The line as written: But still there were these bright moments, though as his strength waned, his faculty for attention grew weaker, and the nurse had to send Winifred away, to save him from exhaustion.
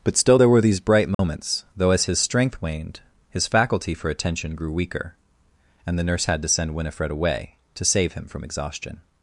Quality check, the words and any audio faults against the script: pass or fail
fail